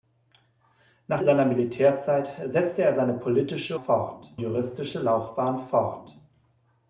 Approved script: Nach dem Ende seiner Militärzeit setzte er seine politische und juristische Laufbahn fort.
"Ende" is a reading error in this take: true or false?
true